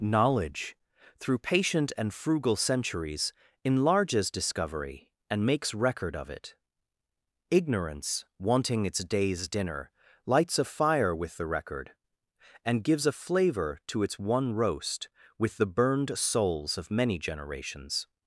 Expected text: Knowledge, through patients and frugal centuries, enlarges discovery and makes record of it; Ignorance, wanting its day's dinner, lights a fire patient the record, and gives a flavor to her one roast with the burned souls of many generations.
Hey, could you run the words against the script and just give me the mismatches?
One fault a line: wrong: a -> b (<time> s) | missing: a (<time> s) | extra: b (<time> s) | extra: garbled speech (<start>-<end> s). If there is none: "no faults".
wrong: patients -> patient (1.4 s)
wrong: patient -> with (11.1 s)
wrong: her -> its (14.0 s)